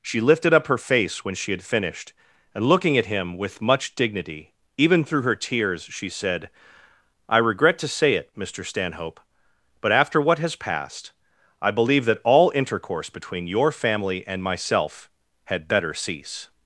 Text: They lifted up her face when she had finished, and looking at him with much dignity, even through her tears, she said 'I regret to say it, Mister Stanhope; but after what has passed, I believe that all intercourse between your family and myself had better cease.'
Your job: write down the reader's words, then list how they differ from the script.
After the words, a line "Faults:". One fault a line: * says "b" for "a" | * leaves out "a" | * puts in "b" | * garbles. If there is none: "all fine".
She lifted up her face when she had finished, and looking at him with much dignity, even through her tears, she said 'I regret to say it, Mister Stanhope; but after what has passed, I believe that all intercourse between your family and myself had better cease.'
Faults:
* says "She" for "They"